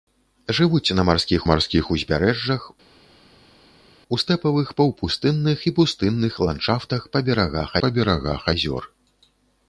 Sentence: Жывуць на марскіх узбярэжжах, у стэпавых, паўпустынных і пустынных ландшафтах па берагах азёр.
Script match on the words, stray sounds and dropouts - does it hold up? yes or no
no